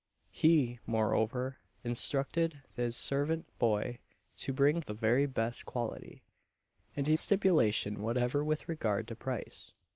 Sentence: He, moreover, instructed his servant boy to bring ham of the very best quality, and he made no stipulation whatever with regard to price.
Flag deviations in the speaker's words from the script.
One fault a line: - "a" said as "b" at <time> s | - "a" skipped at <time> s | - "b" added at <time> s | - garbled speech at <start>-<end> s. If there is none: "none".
- "ham of" skipped at 4.8 s
- "made no" skipped at 7.2 s